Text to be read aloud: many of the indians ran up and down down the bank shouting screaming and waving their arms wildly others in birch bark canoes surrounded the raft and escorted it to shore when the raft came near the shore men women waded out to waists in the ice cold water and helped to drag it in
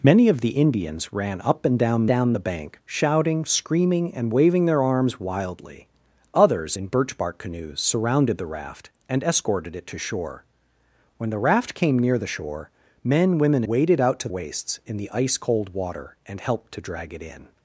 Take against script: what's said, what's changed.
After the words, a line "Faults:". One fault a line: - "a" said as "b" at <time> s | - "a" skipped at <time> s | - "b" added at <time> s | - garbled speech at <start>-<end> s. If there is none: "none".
many of the indians ran up and down down the bank shouting screaming and waving their arms wildly others in birch bark canoes surrounded the raft and escorted it to shore when the raft came near the shore men women waded out to waists in the ice cold water and helped to drag it in
Faults:
none